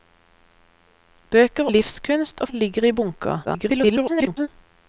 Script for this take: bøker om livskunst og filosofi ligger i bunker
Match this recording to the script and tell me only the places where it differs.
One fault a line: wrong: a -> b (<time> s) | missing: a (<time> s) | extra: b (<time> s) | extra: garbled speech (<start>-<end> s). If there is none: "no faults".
missing: om (1.7 s)
missing: filosofi (2.5 s)
extra: garbled speech (3.4-4.5 s)